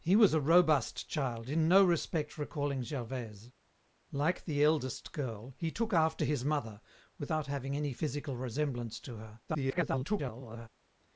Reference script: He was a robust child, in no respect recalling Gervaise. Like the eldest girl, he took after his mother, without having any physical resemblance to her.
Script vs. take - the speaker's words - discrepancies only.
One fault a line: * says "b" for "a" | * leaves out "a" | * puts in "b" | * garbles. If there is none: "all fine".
* garbles